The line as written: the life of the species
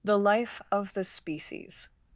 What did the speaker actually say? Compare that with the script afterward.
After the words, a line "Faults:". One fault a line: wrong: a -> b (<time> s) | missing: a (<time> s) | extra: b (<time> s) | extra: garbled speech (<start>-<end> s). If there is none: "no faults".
the life of the species
Faults:
no faults